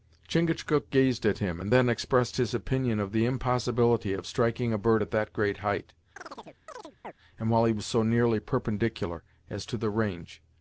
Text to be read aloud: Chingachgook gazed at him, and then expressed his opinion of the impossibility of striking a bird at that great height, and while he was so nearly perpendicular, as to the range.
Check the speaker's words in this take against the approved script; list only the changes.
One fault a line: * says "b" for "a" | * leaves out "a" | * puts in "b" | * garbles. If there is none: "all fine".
all fine